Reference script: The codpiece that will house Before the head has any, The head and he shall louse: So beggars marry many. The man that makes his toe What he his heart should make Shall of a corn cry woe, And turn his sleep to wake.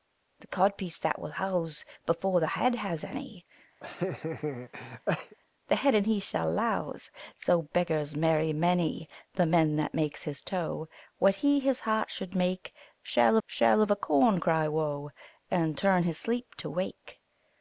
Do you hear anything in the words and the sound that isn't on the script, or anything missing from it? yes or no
yes